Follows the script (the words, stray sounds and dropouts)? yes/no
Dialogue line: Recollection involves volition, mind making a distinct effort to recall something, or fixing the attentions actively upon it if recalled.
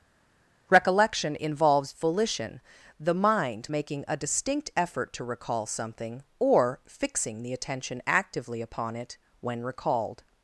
no